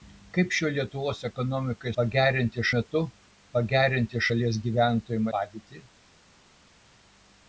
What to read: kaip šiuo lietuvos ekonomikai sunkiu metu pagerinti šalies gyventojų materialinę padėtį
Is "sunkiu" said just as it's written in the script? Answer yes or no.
no